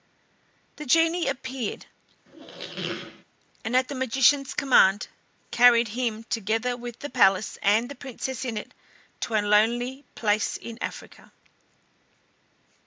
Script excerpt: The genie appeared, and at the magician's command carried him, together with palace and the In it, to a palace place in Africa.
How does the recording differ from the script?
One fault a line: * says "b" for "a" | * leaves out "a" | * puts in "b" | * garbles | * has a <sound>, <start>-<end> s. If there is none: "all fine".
* has a squeak, 2.2-3.2 s
* puts in "the"
* puts in "Princess"
* says "lonely" for "palace"